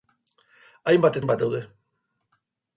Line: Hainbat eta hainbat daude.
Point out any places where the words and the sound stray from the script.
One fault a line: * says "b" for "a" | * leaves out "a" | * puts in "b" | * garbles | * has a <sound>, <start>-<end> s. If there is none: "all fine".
* leaves out "eta"